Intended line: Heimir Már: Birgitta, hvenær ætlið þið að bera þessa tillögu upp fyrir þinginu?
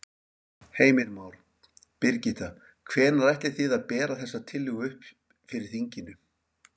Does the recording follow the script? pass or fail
pass